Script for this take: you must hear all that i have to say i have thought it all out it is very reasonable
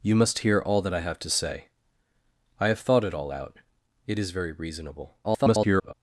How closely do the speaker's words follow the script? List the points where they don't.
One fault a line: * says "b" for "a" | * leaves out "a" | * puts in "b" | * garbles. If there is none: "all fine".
* garbles